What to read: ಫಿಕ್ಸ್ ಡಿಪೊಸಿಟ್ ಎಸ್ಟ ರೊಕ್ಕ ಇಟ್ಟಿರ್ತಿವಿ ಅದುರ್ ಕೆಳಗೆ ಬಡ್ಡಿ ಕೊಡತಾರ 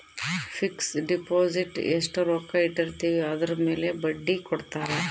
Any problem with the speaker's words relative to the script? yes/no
yes